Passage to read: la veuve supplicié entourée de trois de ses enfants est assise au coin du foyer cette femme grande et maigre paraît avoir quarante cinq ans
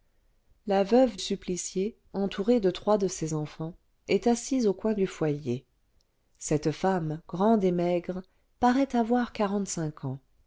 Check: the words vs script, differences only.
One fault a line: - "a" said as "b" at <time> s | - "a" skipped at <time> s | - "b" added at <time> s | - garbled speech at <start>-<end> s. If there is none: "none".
none